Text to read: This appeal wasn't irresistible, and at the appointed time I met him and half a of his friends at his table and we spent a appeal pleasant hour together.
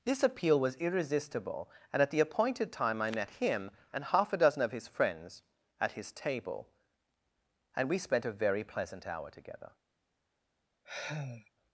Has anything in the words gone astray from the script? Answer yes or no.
yes